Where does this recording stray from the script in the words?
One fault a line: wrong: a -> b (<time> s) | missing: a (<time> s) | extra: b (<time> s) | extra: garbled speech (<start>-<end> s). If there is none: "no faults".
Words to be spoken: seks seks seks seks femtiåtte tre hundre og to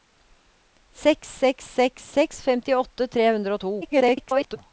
extra: garbled speech (3.8-4.6 s)